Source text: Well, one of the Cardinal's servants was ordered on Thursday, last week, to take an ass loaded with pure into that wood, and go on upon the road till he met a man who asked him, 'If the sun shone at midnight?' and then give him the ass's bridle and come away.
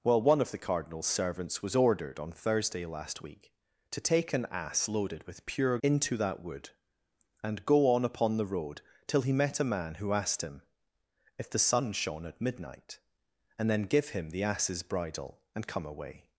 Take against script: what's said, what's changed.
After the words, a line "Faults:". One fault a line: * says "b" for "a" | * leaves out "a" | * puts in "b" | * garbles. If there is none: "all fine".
Well, one of the Cardinal's servants was ordered on Thursday, last week, to take an ass loaded with pure into that wood, and go on upon the road till he met a man who asked him, 'If the sun shone at midnight?' and then give him the ass's bridle and come away.
Faults:
all fine